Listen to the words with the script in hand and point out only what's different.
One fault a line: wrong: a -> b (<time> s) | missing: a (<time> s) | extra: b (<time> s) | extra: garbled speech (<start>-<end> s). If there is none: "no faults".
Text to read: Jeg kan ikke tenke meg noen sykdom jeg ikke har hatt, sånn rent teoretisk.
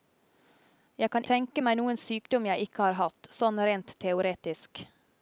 missing: ikke (1.2 s)